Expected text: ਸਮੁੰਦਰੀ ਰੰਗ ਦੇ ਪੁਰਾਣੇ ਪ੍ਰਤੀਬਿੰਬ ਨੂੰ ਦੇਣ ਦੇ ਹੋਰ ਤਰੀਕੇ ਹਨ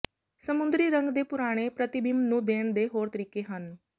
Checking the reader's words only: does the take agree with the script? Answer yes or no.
yes